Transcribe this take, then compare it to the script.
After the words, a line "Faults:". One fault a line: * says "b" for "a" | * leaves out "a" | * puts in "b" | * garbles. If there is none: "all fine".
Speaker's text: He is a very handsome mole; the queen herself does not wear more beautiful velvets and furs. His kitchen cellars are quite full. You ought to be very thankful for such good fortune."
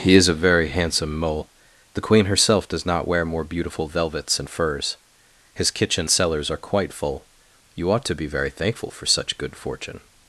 He is a very handsome mole; the queen herself does not wear more beautiful velvets and furs. His kitchen cellars are quite full. You ought to be very thankful for such good fortune."
Faults:
all fine